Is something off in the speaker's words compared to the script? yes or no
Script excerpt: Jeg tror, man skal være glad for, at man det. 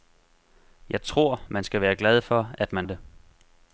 no